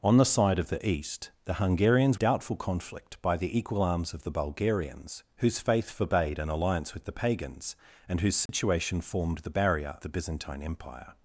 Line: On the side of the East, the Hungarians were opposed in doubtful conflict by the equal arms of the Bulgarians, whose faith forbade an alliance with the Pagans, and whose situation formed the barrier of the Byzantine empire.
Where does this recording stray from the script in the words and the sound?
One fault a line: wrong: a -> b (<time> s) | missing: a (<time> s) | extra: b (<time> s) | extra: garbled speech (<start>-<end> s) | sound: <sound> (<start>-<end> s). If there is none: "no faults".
missing: were opposed in (2.2 s)
sound: dropout (8.5-8.5 s)
missing: of (10.0 s)